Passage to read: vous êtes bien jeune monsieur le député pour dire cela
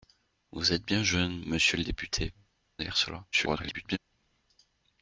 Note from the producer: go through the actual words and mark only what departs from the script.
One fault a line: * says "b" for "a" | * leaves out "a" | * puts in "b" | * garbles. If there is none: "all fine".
* leaves out "pour"
* garbles